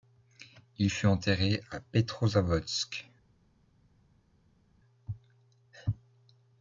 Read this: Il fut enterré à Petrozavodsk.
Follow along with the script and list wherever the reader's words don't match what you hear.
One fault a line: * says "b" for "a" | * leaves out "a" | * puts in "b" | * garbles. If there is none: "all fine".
all fine